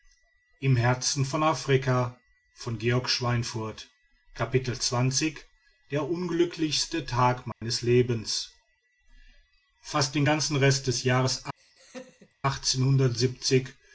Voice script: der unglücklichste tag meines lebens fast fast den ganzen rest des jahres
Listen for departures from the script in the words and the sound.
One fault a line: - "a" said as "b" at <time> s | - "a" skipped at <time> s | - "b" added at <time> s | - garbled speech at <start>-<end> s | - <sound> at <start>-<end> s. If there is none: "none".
- dropout at 7.5-7.6 s
- "fast" skipped at 10.2 s
- laugh at 11.6-12.3 s